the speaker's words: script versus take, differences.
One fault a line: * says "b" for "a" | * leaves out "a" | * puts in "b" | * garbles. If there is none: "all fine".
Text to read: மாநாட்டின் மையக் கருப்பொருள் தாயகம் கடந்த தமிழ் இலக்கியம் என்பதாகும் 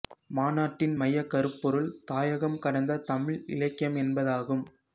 all fine